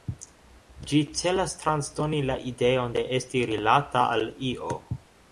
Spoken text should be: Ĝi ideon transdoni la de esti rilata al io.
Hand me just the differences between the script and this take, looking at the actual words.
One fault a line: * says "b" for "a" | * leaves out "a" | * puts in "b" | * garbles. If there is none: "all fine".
* says "celas" for "ideon"
* puts in "ideon"